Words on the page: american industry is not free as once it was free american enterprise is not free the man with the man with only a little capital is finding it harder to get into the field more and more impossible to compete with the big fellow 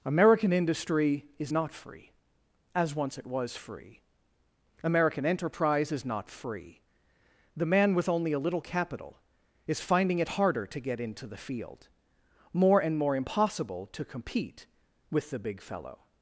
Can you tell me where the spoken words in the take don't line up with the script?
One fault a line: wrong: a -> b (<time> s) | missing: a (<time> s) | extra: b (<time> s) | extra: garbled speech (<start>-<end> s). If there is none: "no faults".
missing: the man with (8.1 s)